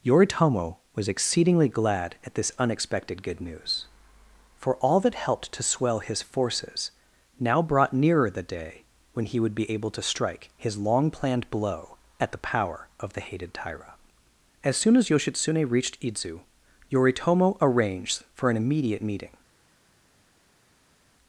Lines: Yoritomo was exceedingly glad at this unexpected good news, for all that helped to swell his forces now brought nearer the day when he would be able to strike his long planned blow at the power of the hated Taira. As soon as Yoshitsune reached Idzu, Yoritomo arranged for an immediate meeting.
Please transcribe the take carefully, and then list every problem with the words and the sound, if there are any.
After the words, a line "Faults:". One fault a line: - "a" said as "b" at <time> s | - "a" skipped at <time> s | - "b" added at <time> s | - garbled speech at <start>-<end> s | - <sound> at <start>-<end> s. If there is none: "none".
Yoritomo was exceedingly glad at this unexpected good news, for all that helped to swell his forces now brought nearer the day when he would be able to strike his long planned blow at the power of the hated Taira. As soon as Yoshitsune reached Idzu, Yoritomo arranged for an immediate meeting.
Faults:
none